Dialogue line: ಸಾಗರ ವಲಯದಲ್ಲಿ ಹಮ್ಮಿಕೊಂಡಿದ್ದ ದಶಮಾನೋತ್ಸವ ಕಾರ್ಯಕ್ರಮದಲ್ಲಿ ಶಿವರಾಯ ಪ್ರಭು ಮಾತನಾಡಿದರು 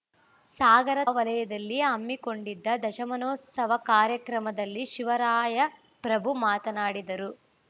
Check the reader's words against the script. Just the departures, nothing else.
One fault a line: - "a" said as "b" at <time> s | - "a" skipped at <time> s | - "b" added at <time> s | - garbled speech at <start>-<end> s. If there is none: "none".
none